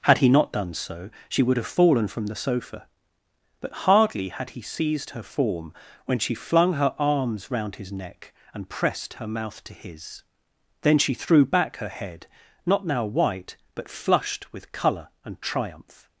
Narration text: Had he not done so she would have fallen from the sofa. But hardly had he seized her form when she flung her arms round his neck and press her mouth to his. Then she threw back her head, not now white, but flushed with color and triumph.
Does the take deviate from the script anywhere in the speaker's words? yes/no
yes